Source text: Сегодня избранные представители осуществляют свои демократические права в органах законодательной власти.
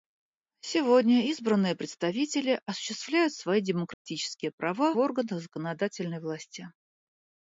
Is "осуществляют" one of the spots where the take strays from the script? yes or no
no